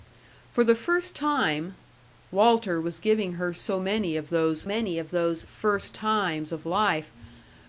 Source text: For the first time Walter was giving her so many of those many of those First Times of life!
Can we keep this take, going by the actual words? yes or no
yes